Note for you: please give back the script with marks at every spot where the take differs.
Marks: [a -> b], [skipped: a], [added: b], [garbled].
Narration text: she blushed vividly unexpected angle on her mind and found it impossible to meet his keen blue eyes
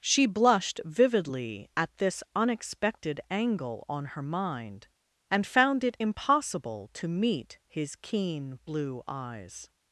she blushed vividly [added: at this] unexpected angle on her mind and found it impossible to meet his keen blue eyes